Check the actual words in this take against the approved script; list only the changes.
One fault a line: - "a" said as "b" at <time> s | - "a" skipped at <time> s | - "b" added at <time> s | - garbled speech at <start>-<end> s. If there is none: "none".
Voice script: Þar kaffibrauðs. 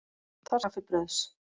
none